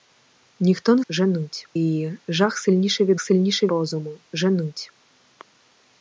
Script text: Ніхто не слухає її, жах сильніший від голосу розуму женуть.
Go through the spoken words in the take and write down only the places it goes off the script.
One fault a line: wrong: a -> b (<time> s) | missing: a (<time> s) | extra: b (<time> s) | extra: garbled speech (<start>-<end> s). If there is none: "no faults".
wrong: слухає -> женуть (1.1 s)
wrong: голосу -> сильніший (3.2 s)